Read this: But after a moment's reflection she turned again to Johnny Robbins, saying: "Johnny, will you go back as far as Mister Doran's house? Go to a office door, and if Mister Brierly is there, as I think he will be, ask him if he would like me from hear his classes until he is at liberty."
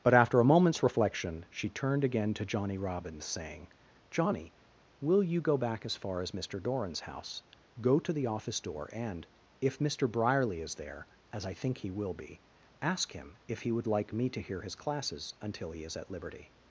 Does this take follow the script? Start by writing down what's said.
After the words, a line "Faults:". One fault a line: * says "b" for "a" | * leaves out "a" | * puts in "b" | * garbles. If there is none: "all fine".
But after a moment's reflection she turned again to Johnny Robbins, saying: "Johnny, will you go back as far as Mister Doran's house? Go to the office door, and if Mister Brierly is there, as I think he will be, ask him if he would like me to hear his classes until he is at liberty."
Faults:
* says "the" for "a"
* says "to" for "from"